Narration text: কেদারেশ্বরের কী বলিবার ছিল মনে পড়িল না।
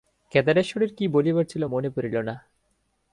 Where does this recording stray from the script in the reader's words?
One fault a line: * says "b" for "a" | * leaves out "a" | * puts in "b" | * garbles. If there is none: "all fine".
all fine